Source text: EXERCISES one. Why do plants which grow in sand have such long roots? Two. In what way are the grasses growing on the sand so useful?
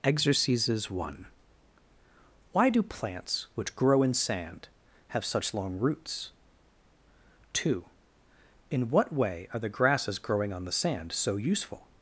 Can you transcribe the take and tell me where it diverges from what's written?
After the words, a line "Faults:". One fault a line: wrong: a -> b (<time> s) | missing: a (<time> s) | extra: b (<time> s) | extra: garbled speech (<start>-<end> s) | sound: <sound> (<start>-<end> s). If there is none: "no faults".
EXERCISES one. Why do plants which grow in sand have such long roots? Two. In what way are the grasses growing on the sand so useful?
Faults:
no faults